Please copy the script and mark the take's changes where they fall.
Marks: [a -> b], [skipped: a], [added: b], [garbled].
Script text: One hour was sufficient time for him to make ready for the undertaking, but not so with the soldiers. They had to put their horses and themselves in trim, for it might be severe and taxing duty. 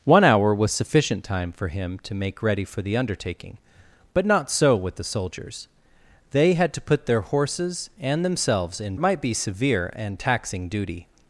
One hour was sufficient time for him to make ready for the undertaking, but not so with the soldiers. They had to put their horses and themselves in [skipped: trim, for] it might be severe and taxing duty.